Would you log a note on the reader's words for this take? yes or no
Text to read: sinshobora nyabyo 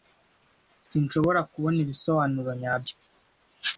yes